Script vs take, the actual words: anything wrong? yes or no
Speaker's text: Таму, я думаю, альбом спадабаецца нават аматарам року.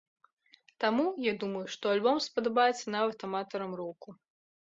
yes